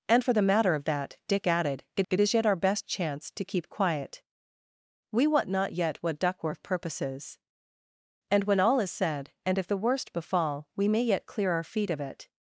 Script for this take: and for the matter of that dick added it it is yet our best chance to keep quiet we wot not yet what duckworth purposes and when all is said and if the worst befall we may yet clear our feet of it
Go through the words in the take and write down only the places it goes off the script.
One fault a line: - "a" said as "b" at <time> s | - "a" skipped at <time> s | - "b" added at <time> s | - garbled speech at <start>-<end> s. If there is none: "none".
none